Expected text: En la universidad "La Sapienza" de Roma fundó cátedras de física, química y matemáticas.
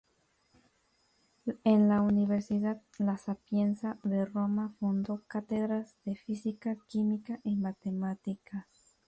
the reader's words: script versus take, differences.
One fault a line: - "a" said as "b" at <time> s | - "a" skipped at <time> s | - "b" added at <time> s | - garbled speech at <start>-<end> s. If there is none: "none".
none